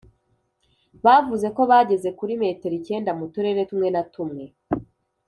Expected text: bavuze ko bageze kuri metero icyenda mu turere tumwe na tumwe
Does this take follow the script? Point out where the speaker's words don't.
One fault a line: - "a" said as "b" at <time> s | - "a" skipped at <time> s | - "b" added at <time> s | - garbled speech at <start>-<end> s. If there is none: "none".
none